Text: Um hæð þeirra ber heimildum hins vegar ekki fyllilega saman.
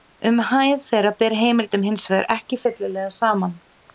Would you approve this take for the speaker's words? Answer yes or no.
yes